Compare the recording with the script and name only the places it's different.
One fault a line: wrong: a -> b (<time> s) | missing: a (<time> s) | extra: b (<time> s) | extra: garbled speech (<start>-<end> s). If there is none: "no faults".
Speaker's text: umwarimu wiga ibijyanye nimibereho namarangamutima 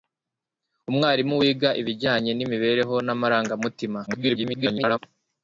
extra: garbled speech (4.1-5.0 s)